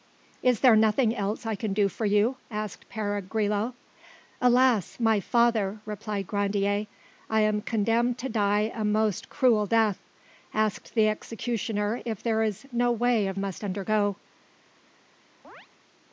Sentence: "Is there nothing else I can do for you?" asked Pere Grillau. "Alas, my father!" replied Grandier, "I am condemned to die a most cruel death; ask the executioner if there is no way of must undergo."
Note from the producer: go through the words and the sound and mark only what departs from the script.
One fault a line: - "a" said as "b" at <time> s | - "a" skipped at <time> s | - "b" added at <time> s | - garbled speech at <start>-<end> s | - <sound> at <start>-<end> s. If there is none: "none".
- chirp at 15.4-15.7 s